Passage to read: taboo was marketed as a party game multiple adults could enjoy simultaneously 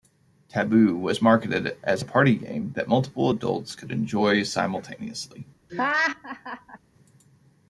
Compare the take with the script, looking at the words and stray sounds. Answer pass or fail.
fail